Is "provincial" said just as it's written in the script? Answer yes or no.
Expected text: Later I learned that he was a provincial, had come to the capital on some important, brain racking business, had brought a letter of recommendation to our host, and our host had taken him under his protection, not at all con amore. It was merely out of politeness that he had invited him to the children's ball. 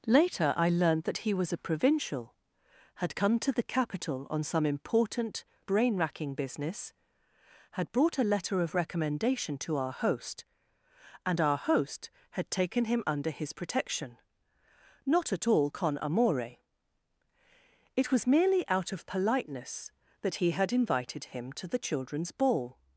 yes